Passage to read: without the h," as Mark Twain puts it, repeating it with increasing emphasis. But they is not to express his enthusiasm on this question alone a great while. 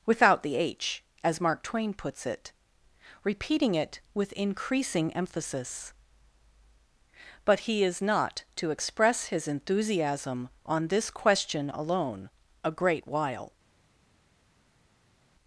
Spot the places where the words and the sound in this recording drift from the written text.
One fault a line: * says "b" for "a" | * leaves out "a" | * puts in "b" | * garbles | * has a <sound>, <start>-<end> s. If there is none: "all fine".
* says "he" for "they"